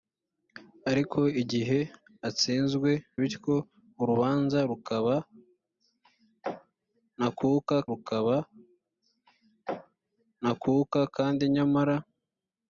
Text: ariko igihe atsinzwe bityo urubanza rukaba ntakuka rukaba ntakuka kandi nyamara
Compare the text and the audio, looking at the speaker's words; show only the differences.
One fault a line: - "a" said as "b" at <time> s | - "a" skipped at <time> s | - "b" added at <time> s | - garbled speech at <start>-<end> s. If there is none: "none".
none